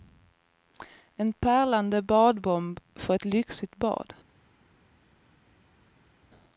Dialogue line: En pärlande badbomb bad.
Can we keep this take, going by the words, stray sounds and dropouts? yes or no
no